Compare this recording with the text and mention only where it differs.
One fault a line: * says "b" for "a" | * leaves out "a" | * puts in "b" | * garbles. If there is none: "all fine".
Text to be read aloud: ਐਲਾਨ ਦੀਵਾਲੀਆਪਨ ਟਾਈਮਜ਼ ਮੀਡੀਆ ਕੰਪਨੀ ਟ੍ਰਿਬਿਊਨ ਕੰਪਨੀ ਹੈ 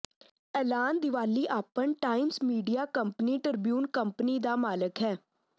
* puts in "ਦਾ ਮਾਲਕ"